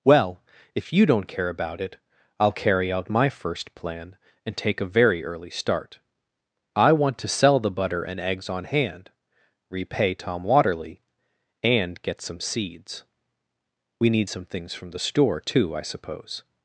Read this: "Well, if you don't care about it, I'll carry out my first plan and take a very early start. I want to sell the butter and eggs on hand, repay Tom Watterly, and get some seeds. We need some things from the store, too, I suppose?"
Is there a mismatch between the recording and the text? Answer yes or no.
no